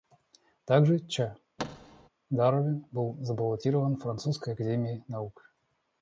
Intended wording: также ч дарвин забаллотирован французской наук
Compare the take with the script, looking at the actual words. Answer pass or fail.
fail